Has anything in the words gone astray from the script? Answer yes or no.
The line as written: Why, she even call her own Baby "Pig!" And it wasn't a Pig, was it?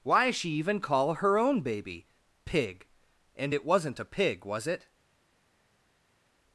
no